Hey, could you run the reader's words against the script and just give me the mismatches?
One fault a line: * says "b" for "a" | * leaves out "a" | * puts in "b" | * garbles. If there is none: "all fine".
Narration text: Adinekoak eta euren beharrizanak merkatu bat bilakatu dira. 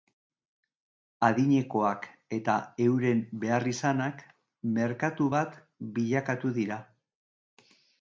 all fine